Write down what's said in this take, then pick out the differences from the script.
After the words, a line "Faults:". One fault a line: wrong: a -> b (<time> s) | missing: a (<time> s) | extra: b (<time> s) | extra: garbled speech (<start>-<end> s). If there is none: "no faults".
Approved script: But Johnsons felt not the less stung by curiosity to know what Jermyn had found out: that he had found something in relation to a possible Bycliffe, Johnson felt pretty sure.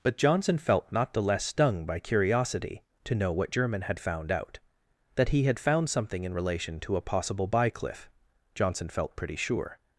But Johnson felt not the less stung by curiosity to know what Jermyn had found out: that he had found something in relation to a possible Bycliffe, Johnson felt pretty sure.
Faults:
wrong: Johnsons -> Johnson (0.2 s)